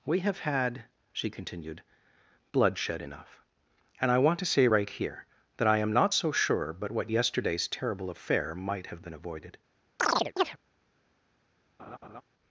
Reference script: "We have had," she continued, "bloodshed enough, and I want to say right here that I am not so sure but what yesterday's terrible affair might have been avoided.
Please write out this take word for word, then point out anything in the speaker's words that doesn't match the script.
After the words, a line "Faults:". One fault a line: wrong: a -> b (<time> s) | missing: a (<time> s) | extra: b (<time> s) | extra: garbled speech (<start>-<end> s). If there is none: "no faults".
"We have had," she continued, "bloodshed enough, and I want to say right here that I am not so sure but what yesterday's terrible affair might have been avoided.
Faults:
no faults